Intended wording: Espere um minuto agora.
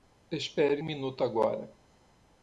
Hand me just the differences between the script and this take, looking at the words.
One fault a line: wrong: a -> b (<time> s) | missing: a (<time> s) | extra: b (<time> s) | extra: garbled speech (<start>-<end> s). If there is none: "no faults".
no faults